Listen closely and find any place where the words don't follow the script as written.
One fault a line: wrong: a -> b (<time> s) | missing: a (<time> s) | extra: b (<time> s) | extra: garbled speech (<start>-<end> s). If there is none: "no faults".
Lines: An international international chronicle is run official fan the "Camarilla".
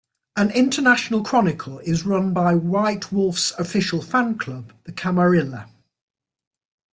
missing: international (1.2 s)
extra: by White Wolf's (2.3 s)
extra: club (4.4 s)